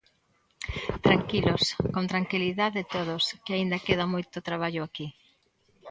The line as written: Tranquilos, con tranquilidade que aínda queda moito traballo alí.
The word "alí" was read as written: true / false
false